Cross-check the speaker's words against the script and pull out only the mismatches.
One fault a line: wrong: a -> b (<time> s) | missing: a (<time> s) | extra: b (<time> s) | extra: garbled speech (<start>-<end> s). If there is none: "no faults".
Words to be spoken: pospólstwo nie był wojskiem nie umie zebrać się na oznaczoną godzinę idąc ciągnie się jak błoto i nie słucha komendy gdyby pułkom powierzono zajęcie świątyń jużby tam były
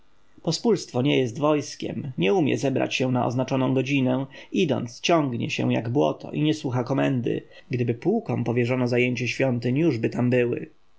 wrong: był -> jest (1.2 s)